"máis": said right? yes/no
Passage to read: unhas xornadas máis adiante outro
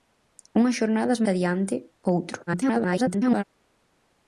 no